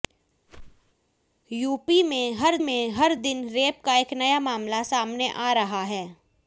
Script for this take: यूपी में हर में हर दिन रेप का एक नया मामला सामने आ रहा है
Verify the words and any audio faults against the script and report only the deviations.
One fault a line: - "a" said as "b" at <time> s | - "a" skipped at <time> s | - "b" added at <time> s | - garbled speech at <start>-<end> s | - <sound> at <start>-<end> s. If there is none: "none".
- whoosh at 0.5-0.9 s